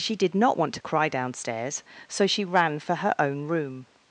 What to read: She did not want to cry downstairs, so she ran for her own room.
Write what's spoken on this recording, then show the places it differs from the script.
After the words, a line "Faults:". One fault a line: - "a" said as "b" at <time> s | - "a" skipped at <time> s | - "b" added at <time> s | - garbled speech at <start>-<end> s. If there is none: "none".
She did not want to cry downstairs, so she ran for her own room.
Faults:
none